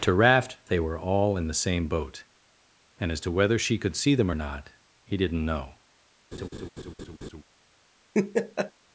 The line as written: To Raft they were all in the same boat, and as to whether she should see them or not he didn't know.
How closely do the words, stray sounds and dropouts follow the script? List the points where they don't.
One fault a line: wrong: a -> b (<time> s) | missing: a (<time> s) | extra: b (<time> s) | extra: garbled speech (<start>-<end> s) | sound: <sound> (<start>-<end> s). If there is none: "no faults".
wrong: should -> could (3.8 s)
sound: laugh (6.3-7.4 s)
sound: laugh (8.1-8.7 s)